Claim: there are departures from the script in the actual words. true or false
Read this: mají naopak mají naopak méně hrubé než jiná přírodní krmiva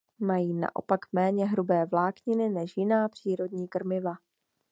true